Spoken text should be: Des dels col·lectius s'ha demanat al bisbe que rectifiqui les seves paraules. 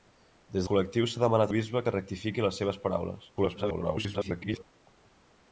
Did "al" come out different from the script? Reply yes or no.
yes